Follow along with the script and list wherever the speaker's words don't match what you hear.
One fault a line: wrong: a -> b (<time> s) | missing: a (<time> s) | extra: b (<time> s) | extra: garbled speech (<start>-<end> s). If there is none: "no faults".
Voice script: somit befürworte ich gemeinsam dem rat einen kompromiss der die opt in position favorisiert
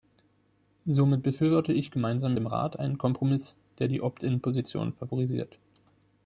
no faults